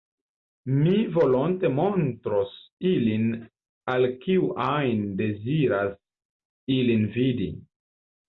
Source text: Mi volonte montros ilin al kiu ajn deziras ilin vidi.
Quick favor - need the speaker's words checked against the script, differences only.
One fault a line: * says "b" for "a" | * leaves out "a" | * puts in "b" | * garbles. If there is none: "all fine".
all fine